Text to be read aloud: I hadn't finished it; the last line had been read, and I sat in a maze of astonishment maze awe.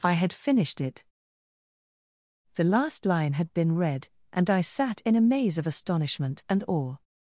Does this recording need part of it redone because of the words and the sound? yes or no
yes